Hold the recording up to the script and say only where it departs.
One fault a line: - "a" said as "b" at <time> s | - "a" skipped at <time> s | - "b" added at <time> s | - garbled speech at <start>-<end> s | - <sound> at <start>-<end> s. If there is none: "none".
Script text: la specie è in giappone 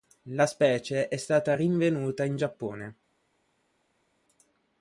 - "stata rinvenuta" added at 1.2 s